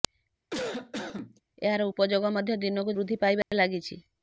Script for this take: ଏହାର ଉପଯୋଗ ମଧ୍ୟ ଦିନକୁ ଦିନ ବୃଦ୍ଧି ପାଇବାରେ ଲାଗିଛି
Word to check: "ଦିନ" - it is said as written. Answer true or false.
false